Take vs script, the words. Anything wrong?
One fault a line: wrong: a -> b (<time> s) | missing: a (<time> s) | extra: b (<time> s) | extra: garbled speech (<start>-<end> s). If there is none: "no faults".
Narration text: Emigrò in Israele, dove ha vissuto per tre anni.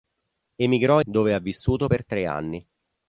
missing: in Israele (1.0 s)